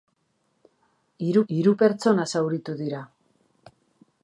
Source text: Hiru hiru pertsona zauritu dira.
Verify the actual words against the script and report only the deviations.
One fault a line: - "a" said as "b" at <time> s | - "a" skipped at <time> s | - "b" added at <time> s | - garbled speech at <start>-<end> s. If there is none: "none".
none